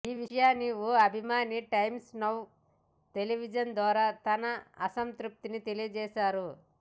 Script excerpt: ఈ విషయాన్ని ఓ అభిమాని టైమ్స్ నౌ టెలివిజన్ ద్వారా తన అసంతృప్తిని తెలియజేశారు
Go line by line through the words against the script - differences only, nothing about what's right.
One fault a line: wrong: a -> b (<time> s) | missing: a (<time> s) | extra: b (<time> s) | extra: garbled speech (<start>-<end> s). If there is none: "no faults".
no faults